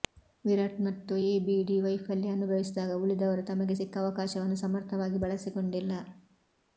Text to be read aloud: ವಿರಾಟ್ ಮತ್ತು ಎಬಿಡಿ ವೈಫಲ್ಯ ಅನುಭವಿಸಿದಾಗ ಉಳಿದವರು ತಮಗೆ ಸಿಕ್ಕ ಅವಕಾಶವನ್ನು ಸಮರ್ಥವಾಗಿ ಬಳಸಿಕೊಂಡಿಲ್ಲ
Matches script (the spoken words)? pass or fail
pass